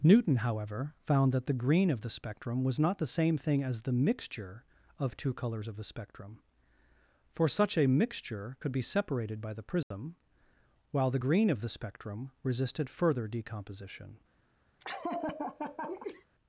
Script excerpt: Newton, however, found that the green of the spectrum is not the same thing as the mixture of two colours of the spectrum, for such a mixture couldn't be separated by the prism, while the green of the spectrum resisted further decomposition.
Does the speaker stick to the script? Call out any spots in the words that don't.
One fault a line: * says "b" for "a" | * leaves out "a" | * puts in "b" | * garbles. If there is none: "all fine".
* says "was" for "is"
* says "could" for "couldn't"